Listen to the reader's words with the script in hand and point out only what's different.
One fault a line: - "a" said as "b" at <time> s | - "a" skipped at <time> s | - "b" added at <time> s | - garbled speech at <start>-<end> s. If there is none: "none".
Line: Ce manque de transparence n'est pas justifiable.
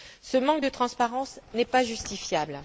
none